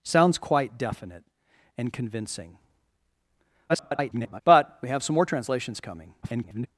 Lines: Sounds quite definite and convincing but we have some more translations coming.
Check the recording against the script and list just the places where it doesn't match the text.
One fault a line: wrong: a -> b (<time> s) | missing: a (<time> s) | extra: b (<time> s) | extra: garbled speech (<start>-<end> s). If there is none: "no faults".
extra: garbled speech (3.7-4.4 s)
extra: garbled speech (6.2-6.7 s)